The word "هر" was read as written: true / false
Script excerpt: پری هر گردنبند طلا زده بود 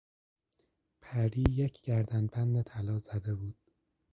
false